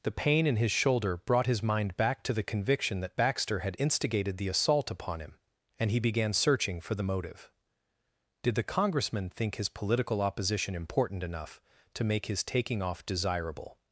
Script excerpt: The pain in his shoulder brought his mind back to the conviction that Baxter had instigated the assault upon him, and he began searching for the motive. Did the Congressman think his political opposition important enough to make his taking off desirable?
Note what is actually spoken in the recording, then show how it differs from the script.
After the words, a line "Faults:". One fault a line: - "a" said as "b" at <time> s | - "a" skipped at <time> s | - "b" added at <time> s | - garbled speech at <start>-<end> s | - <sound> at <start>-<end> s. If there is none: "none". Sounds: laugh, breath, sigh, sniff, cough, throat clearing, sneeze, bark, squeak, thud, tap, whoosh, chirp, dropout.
The pain in his shoulder brought his mind back to the conviction that Baxter had instigated the assault upon him, and he began searching for the motive. Did the Congressman think his political opposition important enough to make his taking off desirable?
Faults:
none